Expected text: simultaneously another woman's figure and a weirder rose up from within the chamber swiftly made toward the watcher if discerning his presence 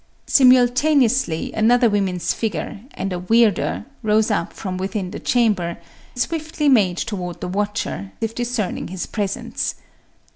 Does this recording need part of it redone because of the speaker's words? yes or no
no